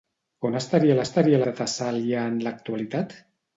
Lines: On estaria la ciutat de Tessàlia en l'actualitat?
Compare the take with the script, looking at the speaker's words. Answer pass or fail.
fail